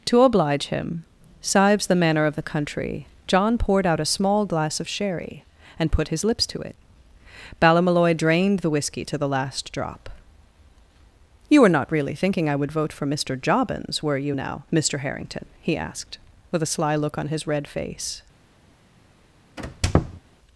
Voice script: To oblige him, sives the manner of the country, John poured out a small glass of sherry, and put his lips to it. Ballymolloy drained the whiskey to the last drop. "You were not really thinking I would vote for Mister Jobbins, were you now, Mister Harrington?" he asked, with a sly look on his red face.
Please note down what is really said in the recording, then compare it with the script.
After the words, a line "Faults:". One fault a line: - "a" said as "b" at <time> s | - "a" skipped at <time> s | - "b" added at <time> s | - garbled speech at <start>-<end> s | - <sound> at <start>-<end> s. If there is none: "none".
To oblige him, sives the manner of the country, John poured out a small glass of sherry, and put his lips to it. Ballymolloy drained the whiskey to the last drop. "You were not really thinking I would vote for Mister Jobbins, were you now, Mister Harrington?" he asked, with a sly look on his red face.
Faults:
- squeak at 19.6-20.2 s